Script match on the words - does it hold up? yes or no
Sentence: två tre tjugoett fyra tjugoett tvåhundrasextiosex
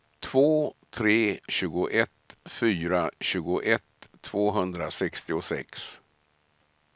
yes